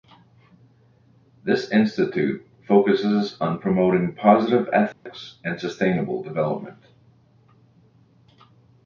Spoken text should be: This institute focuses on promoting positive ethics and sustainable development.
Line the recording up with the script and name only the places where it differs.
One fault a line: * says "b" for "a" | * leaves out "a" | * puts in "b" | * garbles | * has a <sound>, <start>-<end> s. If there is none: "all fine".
* has a dropout, 4.9-5.1 s